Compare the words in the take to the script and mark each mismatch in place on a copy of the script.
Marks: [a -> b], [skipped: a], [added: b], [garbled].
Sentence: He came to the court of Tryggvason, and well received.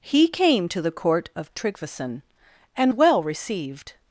He came to the court of Tryggvason, and well received.